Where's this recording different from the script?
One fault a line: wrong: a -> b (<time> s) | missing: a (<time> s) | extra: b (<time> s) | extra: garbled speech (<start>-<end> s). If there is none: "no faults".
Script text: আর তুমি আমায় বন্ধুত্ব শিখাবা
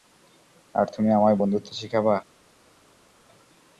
no faults